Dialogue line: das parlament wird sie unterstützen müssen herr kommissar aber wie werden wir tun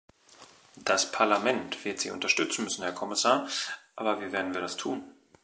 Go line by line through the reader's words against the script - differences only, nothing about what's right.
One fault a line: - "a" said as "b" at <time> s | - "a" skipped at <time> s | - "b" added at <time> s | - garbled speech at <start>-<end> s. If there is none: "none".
- "das" added at 4.6 s